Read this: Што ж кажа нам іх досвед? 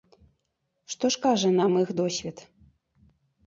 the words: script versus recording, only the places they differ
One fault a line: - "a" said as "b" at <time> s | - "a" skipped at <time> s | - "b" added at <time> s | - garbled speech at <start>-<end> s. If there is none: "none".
none